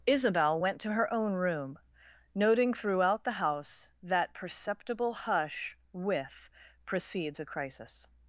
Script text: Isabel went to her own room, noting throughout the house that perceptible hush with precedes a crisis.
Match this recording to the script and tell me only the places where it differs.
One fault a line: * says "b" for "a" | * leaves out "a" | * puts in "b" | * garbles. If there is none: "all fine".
all fine